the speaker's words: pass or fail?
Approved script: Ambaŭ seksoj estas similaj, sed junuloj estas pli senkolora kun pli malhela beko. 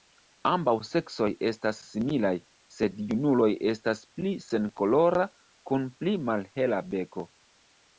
pass